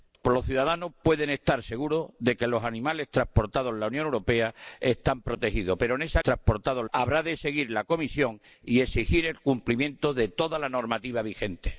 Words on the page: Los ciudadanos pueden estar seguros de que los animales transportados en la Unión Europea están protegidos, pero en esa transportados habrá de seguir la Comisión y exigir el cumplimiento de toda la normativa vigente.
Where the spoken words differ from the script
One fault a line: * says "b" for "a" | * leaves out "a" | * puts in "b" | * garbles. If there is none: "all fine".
all fine